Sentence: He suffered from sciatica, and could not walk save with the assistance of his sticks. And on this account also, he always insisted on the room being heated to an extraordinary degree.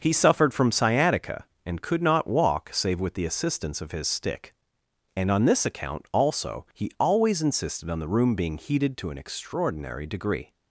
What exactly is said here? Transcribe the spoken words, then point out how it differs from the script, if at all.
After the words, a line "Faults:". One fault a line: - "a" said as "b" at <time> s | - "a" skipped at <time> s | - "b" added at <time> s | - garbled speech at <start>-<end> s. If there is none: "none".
He suffered from sciatica, and could not walk save with the assistance of his stick. And on this account also, he always insisted on the room being heated to an extraordinary degree.
Faults:
- "sticks" said as "stick" at 4.1 s